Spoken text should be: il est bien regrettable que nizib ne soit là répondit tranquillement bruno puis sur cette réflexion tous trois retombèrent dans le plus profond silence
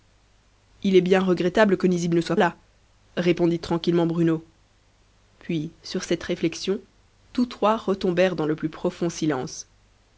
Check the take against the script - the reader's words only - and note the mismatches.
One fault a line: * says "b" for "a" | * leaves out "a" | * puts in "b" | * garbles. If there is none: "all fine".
all fine